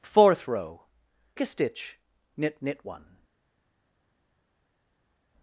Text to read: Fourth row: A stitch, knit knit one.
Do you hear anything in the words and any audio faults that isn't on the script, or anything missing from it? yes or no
no